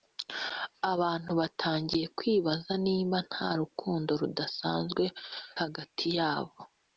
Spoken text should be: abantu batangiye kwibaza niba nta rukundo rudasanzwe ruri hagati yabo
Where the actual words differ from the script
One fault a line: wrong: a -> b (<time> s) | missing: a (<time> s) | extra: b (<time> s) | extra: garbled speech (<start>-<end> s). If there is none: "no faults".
missing: ruri (5.0 s)